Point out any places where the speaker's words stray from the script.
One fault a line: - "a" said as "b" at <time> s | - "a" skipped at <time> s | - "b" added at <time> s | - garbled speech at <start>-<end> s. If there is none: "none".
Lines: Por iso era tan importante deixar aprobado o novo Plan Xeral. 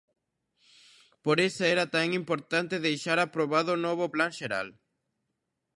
none